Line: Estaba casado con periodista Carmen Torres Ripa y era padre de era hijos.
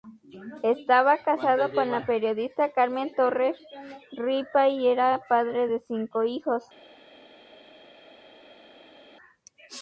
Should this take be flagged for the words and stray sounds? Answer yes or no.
yes